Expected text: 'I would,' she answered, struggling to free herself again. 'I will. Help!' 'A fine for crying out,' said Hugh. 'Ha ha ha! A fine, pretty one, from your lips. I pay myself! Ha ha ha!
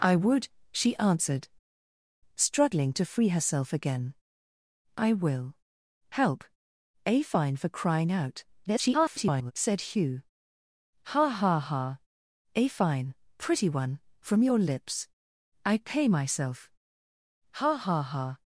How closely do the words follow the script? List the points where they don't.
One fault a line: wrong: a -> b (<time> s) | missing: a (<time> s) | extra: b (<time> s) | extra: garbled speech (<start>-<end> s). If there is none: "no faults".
extra: garbled speech (8.6-9.5 s)